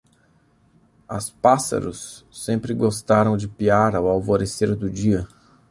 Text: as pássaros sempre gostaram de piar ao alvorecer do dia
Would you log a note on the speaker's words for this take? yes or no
no